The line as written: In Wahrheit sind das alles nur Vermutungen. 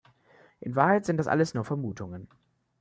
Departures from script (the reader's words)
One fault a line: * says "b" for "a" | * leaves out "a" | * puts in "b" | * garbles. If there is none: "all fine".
all fine